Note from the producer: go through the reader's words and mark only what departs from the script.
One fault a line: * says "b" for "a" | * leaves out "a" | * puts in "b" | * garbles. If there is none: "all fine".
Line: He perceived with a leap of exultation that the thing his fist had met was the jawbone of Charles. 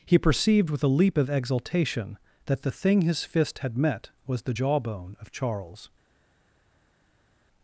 all fine